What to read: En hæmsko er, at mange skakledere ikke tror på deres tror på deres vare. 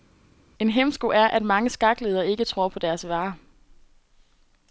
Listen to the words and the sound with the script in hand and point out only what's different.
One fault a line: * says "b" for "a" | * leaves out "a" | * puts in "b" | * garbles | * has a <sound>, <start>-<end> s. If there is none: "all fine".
* leaves out "tror på deres"